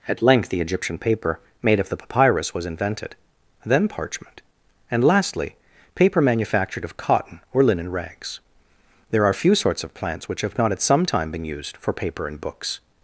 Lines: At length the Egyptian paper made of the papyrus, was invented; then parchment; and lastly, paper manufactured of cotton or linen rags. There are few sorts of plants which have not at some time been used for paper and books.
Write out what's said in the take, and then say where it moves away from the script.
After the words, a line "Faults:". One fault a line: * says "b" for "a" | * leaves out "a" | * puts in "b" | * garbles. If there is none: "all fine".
At length the Egyptian paper made of the papyrus, was invented; then parchment; and lastly, paper manufactured of cotton or linen rags. There are few sorts of plants which have not at some time been used for paper and books.
Faults:
all fine